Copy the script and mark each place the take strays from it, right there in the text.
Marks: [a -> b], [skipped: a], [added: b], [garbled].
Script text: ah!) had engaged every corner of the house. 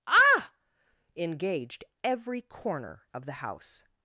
ah!) [skipped: had] engaged every corner of the house.